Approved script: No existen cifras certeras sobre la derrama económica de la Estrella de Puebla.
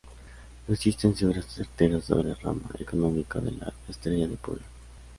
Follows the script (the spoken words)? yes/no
no